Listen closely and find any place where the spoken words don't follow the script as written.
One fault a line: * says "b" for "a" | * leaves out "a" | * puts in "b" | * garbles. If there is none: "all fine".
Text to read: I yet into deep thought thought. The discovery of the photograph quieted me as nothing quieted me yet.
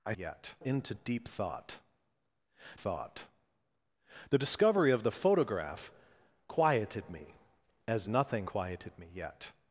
all fine